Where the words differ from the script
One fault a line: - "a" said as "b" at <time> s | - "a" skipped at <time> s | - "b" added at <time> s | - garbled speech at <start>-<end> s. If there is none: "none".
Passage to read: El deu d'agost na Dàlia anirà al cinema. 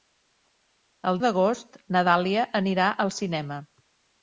- "deu" skipped at 1.2 s